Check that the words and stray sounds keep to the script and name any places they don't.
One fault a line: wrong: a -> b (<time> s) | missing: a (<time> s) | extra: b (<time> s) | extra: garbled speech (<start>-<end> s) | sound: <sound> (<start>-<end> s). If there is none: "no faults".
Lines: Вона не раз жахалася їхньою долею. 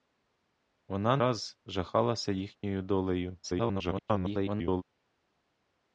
missing: не (1.2 s)
extra: garbled speech (3.4-4.8 s)